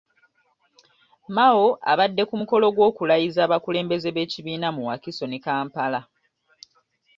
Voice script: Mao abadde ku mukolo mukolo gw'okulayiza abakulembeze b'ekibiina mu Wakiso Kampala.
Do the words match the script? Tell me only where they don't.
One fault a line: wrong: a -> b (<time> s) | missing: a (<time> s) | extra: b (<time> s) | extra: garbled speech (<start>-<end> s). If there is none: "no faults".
missing: mukolo (2.6 s)
extra: ne (5.3 s)